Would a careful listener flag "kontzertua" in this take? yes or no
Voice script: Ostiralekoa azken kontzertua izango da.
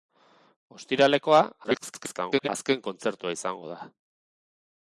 no